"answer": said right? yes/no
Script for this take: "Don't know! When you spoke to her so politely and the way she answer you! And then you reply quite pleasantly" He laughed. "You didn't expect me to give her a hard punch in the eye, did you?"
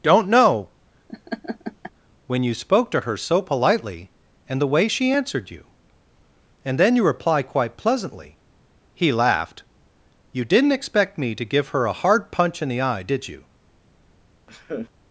no